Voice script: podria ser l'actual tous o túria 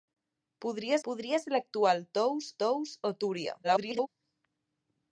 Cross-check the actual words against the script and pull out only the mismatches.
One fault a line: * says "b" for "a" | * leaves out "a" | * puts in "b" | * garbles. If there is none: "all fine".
* puts in "podria"
* puts in "tous"
* garbles